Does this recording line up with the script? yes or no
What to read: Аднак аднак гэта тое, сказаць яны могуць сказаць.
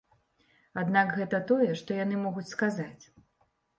no